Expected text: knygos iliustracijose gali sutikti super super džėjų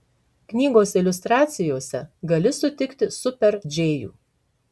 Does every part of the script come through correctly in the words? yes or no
no